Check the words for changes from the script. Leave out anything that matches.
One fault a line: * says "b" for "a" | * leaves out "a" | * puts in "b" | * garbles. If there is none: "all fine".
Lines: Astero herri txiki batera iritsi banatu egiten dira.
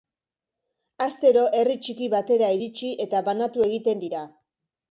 * puts in "eta"